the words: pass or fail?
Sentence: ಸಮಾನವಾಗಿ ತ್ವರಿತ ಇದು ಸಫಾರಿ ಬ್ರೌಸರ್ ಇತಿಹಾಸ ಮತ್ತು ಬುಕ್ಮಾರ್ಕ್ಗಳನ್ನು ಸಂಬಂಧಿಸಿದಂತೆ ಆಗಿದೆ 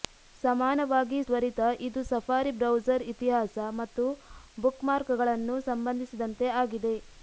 pass